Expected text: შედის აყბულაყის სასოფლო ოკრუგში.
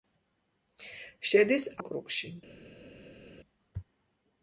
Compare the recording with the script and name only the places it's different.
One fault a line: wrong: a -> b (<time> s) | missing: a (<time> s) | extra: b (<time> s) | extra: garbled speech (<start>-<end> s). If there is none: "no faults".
missing: აყბულაყის სასოფლო (1.7 s)